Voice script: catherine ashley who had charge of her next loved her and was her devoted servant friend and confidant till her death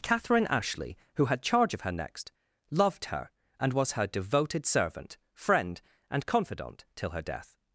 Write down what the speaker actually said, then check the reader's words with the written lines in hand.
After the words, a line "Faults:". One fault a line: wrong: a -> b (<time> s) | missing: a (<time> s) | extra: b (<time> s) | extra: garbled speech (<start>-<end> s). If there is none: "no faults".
catherine ashley who had charge of her next loved her and was her devoted servant friend and confidant till her death
Faults:
no faults